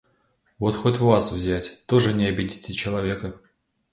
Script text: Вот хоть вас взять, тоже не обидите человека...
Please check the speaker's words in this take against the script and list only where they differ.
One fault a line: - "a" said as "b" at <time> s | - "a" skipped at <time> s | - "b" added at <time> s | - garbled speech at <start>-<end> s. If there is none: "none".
none